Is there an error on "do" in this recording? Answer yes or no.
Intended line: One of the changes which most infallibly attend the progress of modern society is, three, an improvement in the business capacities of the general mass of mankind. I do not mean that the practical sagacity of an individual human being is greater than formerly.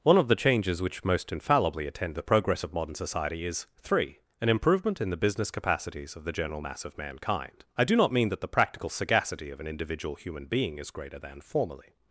no